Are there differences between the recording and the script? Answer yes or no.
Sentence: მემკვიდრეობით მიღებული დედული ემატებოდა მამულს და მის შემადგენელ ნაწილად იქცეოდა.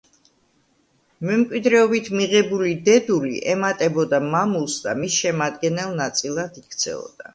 no